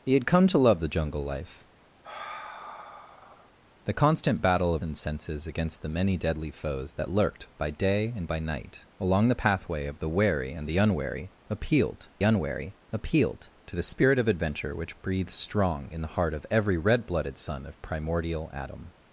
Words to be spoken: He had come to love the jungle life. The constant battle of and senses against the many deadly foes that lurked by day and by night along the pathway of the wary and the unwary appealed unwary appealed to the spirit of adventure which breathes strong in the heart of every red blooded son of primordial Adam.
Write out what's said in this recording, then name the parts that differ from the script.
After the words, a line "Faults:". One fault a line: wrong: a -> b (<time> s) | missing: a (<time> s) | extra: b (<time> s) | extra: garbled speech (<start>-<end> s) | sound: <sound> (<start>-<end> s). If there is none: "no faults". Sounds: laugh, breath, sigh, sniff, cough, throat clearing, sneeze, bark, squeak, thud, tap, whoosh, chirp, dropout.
He had come to love the jungle life. The constant battle of and senses against the many deadly foes that lurked by day and by night along the pathway of the wary and the unwary appealed unwary appealed to the spirit of adventure which breathes strong in the heart of every red blooded son of primordial Adam.
Faults:
sound: sigh (2.0-3.5 s)